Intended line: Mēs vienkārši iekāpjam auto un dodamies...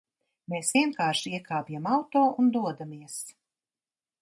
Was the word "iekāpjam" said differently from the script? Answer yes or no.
no